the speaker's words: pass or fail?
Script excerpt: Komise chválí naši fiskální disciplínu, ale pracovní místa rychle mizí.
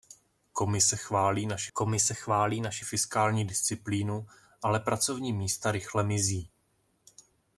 fail